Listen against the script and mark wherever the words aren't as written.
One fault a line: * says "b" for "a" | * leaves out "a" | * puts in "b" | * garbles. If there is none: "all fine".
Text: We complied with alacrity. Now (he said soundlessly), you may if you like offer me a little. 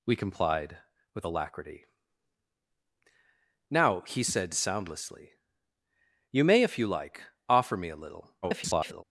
* garbles